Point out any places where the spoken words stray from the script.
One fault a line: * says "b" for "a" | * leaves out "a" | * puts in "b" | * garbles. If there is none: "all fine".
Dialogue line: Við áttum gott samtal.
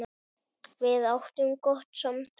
all fine